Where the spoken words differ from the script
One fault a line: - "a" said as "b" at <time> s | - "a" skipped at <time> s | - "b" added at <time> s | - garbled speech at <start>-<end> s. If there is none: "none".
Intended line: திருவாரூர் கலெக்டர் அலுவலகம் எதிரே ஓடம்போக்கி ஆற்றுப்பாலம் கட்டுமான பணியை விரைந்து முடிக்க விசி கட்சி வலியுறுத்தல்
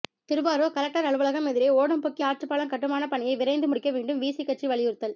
- "வேண்டும்" added at 3.9 s